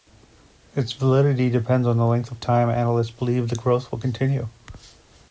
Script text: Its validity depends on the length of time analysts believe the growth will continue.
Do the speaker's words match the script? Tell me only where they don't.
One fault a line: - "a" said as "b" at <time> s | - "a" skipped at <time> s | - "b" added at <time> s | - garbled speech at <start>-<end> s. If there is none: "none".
none